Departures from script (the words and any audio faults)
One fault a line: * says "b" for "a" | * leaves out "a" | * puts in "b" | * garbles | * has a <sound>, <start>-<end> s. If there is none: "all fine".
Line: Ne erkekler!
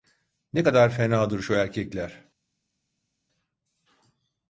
* puts in "kadar fenadır şu"